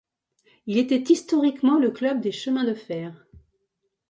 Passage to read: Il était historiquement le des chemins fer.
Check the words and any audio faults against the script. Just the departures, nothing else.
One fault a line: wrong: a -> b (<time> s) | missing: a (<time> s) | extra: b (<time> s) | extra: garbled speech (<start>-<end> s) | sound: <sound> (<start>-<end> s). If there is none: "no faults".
extra: club (1.9 s)
extra: de (2.6 s)